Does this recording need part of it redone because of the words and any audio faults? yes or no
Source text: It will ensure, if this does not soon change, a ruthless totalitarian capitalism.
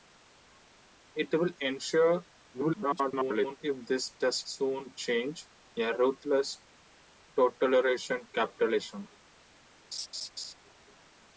yes